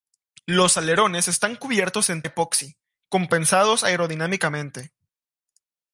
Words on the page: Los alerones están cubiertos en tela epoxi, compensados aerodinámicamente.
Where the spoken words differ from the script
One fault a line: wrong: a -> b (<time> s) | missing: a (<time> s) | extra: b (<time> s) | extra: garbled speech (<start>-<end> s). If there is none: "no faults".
missing: tela (2.2 s)